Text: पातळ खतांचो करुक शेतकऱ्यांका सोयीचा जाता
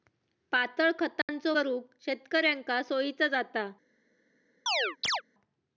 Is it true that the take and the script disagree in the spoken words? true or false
false